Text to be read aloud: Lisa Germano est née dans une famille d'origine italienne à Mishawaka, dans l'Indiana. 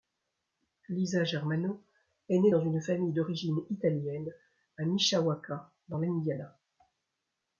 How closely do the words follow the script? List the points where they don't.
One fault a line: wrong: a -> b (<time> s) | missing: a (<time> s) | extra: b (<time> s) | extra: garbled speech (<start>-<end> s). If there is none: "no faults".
no faults